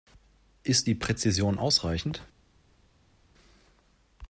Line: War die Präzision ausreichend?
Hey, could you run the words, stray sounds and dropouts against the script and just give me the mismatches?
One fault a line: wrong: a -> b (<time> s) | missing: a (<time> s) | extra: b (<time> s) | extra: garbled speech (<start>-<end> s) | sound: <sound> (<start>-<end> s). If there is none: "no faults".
wrong: War -> Ist (0.6 s)